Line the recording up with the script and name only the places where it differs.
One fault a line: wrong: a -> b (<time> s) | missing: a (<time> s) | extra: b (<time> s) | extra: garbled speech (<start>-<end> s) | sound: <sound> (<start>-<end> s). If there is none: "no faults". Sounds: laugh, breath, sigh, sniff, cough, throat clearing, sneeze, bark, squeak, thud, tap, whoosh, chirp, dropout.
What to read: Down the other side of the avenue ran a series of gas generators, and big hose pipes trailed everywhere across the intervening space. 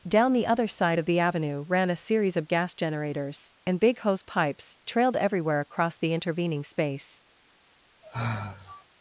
sound: sigh (8.0-8.8 s)